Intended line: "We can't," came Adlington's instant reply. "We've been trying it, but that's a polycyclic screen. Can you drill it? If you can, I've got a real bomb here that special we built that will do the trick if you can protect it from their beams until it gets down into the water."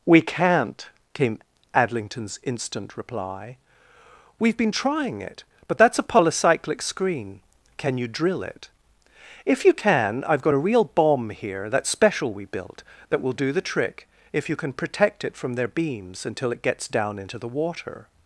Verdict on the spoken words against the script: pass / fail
pass